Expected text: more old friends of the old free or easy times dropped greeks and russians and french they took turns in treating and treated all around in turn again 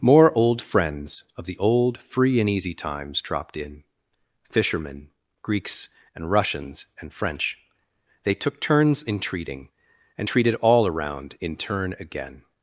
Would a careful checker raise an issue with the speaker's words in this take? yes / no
yes